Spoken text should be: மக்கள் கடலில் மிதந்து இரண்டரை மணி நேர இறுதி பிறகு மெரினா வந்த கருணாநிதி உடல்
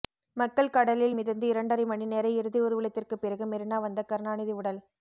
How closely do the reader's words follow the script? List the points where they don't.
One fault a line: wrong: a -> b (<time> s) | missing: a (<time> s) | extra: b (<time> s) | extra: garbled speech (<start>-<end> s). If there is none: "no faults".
extra: ஊர்வலத்திற்கு (2.6 s)